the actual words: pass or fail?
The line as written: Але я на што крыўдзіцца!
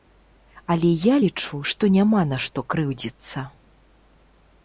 fail